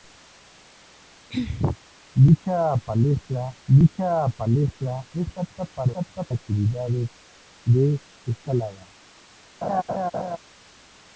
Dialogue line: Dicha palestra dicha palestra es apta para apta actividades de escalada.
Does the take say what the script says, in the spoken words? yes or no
yes